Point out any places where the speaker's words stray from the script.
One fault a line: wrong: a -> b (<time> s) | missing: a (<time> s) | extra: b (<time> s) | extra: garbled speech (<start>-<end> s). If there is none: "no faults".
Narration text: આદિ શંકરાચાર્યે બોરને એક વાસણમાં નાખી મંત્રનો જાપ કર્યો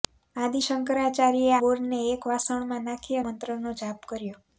no faults